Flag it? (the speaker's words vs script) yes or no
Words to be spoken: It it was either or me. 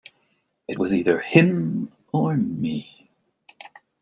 yes